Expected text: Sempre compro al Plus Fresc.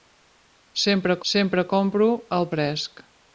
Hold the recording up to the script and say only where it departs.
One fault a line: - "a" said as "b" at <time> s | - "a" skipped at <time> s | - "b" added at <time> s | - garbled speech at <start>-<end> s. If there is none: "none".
- "sempre" added at 1.3 s
- "Plus" skipped at 2.5 s